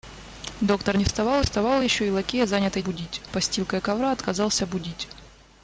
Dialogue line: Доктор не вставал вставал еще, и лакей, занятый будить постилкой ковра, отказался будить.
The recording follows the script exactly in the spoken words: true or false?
true